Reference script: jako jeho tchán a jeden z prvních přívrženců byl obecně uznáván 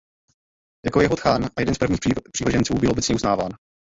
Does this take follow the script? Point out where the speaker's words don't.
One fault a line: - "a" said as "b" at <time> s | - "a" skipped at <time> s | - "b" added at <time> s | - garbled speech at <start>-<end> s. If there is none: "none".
none